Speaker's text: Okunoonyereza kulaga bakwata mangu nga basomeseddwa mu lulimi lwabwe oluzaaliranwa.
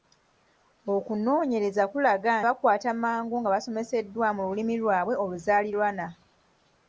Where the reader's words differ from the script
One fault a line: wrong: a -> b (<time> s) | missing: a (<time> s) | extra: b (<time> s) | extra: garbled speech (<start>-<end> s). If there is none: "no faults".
no faults